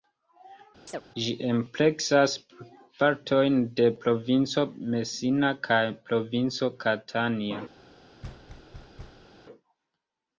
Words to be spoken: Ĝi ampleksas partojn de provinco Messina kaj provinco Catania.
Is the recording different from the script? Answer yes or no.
no